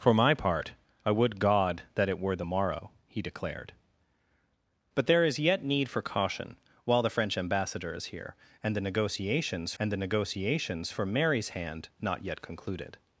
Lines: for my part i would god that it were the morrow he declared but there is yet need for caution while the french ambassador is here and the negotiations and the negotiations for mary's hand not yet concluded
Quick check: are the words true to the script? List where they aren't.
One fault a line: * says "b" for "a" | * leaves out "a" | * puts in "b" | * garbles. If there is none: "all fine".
all fine